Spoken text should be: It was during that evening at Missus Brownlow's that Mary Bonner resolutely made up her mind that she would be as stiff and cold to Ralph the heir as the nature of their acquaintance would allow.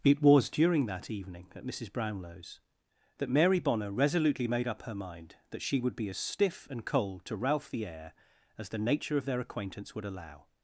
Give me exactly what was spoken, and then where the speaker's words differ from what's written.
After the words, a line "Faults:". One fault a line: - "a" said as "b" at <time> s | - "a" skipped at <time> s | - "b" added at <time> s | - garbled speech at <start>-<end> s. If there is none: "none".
It was during that evening at Missus Brownlow's that Mary Bonner resolutely made up her mind that she would be as stiff and cold to Ralph the heir as the nature of their acquaintance would allow.
Faults:
none